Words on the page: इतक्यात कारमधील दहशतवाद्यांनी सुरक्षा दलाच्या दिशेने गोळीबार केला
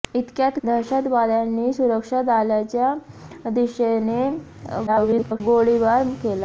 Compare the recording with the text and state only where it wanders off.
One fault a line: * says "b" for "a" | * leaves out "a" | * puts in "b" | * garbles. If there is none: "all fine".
* leaves out "कारमधील"
* garbles